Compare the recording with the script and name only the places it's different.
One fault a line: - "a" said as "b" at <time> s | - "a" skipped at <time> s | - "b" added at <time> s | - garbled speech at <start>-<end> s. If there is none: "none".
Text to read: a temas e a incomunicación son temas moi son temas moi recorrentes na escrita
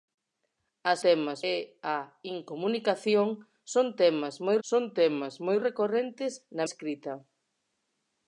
none